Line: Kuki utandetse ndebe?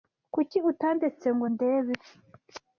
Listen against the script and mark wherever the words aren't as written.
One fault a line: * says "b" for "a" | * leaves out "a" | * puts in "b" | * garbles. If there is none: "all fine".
* puts in "ngo"